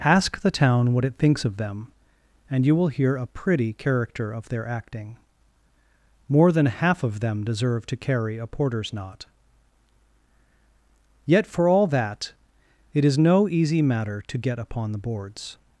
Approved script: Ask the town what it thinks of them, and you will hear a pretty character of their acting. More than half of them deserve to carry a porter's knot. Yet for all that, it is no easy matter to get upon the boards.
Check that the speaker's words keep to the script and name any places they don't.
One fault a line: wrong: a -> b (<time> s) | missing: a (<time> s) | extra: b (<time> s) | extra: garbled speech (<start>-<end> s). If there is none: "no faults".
no faults